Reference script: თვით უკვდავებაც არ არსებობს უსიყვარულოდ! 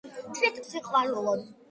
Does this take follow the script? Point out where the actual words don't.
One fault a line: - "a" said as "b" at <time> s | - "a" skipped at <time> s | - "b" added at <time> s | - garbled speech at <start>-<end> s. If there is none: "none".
- "უკვდავებაც არ არსებობს" skipped at 0.6 s